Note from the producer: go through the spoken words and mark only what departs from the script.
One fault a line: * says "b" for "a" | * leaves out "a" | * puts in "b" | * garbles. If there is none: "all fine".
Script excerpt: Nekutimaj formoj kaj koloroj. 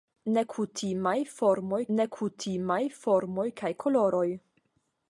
* puts in "nekutimaj formoj"